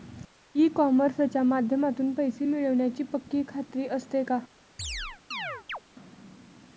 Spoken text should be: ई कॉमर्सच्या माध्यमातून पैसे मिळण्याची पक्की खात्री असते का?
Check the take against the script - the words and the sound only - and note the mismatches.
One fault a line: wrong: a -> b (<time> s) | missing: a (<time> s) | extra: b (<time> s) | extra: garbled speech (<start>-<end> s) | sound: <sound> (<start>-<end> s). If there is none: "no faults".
sound: chirp (4.8-5.8 s)